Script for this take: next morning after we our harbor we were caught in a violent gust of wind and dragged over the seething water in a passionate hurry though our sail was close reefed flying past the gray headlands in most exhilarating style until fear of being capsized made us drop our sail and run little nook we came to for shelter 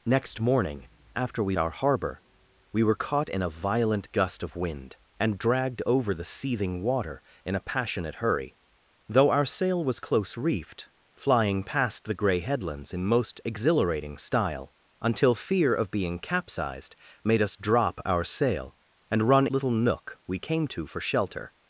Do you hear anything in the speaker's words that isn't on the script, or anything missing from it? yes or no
no